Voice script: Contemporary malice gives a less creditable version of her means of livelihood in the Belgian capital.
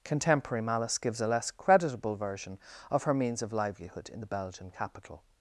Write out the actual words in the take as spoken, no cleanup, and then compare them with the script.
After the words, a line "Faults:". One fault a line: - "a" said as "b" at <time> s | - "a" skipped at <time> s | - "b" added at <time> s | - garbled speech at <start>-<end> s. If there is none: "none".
Contemporary malice gives a less creditable version of her means of livelihood in the Belgian capital.
Faults:
none